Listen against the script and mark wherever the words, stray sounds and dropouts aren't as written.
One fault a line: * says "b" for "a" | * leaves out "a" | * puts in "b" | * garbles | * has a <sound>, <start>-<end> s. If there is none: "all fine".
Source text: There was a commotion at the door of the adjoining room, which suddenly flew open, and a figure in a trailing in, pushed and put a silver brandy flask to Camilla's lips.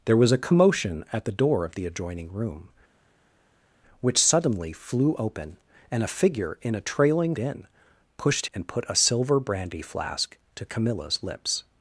all fine